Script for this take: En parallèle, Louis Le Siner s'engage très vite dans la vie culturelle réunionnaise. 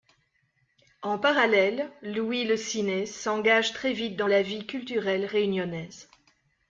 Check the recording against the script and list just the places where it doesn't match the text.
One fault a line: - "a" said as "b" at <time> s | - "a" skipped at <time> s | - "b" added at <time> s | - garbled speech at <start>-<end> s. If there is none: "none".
none